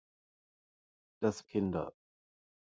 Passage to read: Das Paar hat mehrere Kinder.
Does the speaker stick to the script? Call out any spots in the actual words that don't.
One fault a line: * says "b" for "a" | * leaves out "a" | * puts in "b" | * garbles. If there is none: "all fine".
* leaves out "Paar hat mehrere"